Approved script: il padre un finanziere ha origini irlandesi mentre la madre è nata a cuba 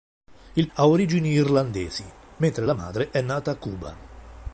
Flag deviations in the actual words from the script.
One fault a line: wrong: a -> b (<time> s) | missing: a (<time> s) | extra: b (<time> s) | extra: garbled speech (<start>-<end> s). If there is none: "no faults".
missing: padre un finanziere (0.7 s)